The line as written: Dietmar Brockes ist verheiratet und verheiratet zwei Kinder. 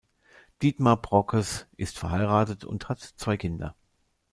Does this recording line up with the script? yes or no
no